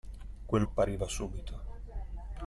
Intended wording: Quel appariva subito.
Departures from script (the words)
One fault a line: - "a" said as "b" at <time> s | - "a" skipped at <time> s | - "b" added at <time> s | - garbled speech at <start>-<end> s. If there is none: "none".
none